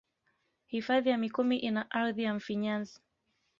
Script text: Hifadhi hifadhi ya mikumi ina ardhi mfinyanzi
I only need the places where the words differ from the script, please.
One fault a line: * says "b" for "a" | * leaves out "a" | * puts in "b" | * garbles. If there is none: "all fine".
* leaves out "hifadhi"
* puts in "ya"